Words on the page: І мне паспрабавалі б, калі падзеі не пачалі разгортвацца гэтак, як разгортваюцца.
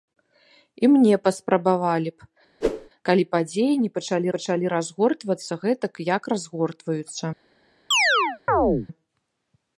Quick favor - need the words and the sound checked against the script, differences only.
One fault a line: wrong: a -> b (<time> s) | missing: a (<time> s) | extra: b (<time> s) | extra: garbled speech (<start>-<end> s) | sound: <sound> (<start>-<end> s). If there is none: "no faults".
sound: whoosh (2.6-2.9 s)
extra: пачалі (4.3 s)
sound: chirp (7.9-8.9 s)